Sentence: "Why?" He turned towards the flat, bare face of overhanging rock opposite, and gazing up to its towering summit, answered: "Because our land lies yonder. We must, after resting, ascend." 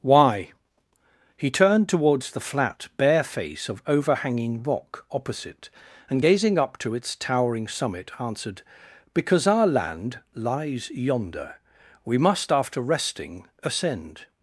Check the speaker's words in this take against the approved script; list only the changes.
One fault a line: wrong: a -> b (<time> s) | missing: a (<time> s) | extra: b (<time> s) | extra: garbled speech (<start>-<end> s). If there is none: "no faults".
no faults